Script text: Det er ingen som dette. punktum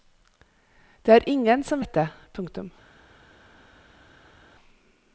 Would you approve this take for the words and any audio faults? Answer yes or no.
yes